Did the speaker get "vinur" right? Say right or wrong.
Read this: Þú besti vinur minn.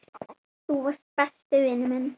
right